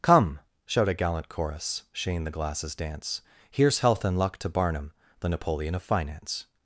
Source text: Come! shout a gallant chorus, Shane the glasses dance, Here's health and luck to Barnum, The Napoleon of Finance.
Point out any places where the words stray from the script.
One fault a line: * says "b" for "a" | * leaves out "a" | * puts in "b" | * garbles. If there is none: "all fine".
all fine